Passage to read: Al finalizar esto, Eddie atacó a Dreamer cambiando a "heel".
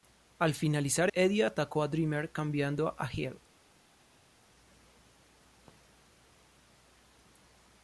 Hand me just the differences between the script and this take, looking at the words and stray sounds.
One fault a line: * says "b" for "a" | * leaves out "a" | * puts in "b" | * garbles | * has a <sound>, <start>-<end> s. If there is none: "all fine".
* leaves out "esto"